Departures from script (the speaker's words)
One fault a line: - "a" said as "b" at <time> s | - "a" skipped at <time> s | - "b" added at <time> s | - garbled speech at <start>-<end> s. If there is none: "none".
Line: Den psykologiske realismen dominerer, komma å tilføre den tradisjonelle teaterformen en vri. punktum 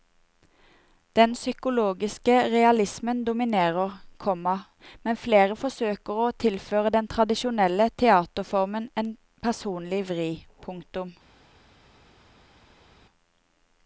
- "men flere forsøker" added at 5.0 s
- "personlig" added at 9.5 s